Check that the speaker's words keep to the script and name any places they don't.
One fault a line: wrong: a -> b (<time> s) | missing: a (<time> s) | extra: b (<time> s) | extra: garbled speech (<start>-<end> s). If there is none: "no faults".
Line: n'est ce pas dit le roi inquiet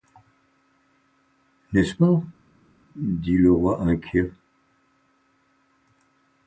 no faults